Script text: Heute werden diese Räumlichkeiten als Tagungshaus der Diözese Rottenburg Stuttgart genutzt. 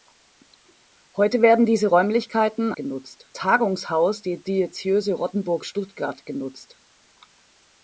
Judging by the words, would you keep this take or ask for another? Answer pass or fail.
fail